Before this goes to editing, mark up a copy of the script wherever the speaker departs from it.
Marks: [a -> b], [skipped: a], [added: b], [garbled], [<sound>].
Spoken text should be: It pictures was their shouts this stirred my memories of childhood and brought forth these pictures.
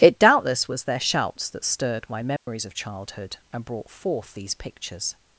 It [pictures -> doubtless] was their shouts [this -> that] stirred my memories [dropout] of childhood and brought forth these pictures.